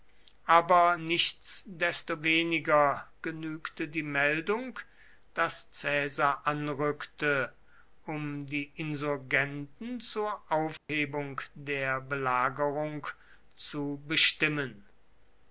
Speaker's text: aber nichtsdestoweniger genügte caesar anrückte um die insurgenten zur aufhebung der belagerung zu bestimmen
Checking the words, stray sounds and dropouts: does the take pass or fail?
fail